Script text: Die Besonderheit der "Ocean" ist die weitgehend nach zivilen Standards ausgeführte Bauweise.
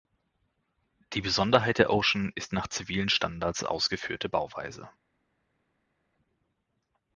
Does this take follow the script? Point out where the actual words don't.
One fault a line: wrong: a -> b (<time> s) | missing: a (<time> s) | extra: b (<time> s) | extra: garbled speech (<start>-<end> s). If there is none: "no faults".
missing: die weitgehend (2.5 s)